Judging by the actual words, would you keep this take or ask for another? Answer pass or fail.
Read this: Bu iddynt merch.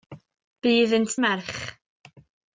pass